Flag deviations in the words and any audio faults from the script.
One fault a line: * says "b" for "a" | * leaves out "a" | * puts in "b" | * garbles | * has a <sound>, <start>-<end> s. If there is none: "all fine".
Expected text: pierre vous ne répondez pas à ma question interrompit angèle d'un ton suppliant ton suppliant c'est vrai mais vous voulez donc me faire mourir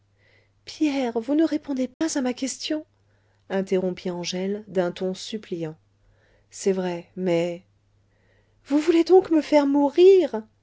* has a dropout, 1.9-2.0 s
* leaves out "ton suppliant"